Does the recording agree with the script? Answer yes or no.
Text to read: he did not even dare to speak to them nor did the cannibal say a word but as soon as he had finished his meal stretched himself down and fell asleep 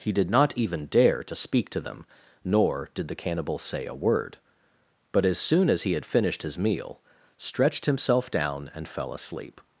yes